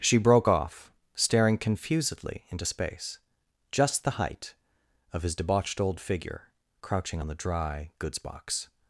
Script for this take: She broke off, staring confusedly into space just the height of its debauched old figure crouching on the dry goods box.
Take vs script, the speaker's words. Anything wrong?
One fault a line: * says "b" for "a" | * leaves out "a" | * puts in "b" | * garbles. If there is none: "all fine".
* says "his" for "its"